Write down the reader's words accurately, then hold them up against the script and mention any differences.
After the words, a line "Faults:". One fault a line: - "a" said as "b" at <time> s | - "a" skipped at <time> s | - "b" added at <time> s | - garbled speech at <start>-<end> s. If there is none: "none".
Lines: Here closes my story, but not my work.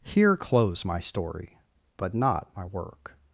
Here close my story, but not my work.
Faults:
- "closes" said as "close" at 0.3 s